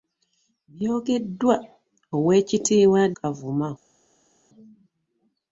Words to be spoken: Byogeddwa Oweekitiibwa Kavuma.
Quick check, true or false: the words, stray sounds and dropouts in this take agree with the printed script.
true